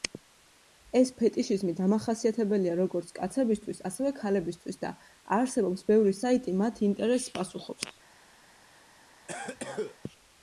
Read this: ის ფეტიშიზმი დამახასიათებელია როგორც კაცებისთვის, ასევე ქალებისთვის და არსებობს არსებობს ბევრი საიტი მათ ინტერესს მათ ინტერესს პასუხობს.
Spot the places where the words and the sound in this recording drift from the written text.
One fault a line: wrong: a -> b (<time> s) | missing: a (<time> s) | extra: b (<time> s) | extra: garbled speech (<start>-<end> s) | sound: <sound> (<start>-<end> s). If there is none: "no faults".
wrong: ის -> ეს (1.0 s)
missing: არსებობს (5.9 s)
missing: მათ ინტერესს (7.3 s)
sound: cough (9.3-10.0 s)